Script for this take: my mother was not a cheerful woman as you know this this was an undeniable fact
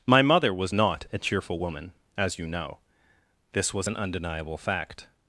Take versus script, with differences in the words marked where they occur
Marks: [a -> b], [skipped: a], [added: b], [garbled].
my mother was not a cheerful woman as you know this [skipped: this] was an undeniable fact